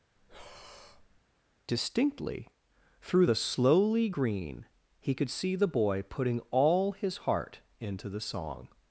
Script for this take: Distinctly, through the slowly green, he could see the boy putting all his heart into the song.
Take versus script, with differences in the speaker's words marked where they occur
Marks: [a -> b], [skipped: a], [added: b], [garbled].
Distinctly, through the slowly green, he could see the boy putting all his heart into the song.